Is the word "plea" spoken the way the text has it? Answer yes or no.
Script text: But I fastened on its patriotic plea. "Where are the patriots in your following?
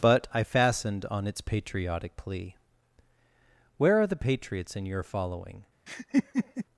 yes